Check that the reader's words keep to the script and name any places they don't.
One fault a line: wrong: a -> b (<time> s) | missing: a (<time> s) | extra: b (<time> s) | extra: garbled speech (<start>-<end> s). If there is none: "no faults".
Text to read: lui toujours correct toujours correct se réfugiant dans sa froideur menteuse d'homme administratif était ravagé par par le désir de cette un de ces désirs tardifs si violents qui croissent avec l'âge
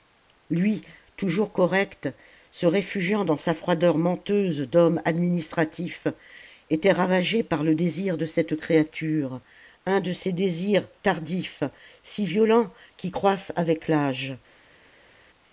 missing: toujours correct (2.1 s)
missing: par (7.6 s)
extra: créature (8.6 s)